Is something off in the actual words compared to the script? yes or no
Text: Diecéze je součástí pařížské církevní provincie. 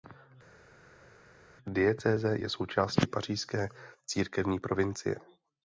no